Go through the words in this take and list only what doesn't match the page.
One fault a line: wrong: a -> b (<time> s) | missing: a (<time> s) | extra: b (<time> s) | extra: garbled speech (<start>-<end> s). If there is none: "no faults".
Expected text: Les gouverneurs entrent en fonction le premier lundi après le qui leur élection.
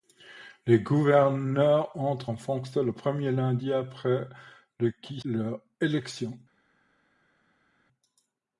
no faults